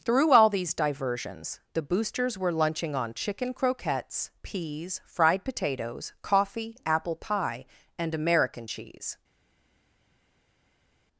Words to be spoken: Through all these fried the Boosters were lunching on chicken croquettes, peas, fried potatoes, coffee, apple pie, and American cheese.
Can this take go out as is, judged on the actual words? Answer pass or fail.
fail